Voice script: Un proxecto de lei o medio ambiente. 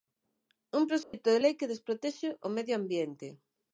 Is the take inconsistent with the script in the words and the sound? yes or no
yes